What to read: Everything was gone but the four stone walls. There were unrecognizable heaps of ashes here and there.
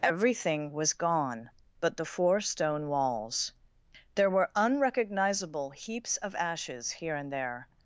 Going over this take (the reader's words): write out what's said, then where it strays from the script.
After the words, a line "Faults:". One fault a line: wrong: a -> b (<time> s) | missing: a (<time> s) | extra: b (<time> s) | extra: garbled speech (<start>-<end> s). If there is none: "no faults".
Everything was gone but the four stone walls. There were unrecognizable heaps of ashes here and there.
Faults:
no faults